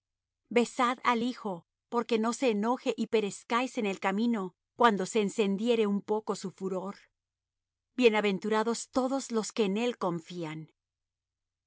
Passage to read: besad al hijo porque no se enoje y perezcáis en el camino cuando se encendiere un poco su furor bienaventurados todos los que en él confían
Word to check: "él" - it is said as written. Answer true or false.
true